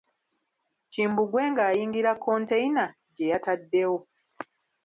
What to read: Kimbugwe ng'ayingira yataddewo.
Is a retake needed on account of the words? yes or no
yes